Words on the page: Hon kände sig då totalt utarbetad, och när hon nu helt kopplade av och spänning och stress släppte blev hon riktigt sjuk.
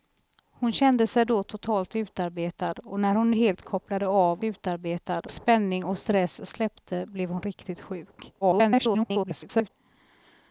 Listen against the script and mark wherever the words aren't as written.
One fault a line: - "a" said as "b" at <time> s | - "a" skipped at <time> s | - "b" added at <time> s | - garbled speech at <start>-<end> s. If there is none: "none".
- "nu" skipped at 3.3 s
- "och" said as "utarbetad" at 4.4 s
- garbled speech at 8.4-9.7 s